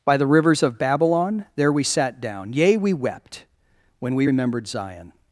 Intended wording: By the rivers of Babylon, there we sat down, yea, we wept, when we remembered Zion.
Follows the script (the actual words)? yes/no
yes